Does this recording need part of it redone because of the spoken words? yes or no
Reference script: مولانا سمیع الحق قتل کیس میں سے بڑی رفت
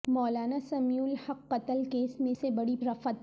no